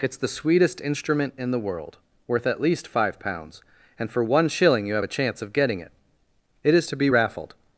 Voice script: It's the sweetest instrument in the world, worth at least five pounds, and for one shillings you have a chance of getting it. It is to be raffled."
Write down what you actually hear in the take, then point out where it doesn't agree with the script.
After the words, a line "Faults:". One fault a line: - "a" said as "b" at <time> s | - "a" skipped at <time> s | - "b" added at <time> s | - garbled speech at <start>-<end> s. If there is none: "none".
It's the sweetest instrument in the world, worth at least five pounds, and for one shilling you have a chance of getting it. It is to be raffled."
Faults:
- "shillings" said as "shilling" at 4.5 s